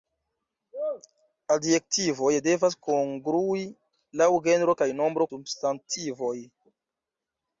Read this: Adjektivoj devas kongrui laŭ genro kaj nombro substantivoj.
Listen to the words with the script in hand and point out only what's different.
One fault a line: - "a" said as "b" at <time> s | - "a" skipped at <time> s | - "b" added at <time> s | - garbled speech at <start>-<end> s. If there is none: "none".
none